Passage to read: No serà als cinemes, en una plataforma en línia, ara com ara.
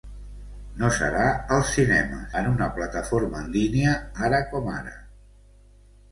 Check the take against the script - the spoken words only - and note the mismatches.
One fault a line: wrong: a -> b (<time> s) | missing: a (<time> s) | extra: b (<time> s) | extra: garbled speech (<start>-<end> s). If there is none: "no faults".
no faults